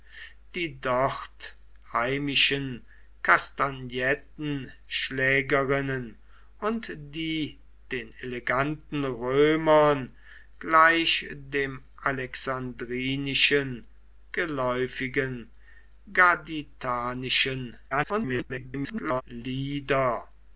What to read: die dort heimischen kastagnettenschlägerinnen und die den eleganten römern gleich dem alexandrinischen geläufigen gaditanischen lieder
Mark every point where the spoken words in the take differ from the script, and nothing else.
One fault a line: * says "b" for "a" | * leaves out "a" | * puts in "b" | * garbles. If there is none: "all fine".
* garbles